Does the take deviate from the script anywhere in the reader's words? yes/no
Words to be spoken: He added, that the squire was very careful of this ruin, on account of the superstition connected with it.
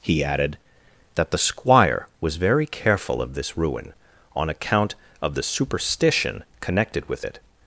no